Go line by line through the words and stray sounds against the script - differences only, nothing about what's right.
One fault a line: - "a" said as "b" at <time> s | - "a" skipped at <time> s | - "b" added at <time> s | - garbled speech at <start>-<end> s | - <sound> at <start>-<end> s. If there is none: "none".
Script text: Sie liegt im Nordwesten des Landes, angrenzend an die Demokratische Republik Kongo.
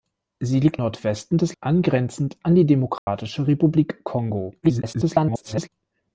- "im" skipped at 0.8 s
- "Landes" skipped at 1.6 s
- dropout at 3.0-3.1 s
- garbled speech at 4.6-5.7 s